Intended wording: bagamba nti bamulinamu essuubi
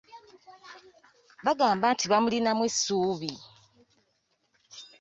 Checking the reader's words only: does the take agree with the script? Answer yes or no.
yes